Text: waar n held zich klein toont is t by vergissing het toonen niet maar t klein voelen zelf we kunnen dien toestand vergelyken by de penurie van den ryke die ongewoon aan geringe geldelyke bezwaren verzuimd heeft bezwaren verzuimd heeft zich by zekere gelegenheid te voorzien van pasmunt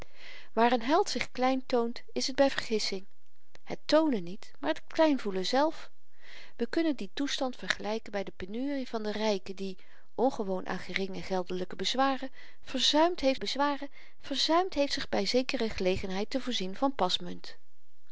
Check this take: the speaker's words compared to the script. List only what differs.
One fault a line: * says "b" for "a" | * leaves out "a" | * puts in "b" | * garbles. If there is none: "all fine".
all fine